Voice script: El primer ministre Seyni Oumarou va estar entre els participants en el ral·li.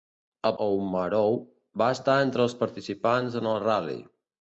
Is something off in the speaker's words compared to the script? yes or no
yes